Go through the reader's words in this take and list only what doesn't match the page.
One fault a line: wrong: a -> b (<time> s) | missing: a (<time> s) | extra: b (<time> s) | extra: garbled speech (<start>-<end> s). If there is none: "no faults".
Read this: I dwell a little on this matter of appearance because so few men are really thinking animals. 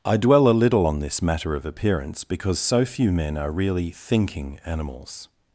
no faults